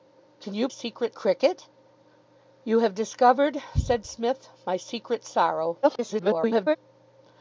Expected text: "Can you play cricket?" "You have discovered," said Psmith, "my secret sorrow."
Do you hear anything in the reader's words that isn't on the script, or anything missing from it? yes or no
yes